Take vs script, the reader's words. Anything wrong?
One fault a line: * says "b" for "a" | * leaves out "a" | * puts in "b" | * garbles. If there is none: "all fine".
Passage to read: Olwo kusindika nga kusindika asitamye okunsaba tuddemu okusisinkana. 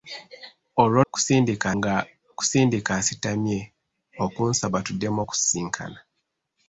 all fine